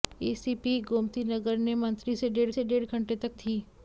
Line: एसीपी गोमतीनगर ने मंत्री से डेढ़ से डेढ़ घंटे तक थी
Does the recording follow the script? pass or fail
pass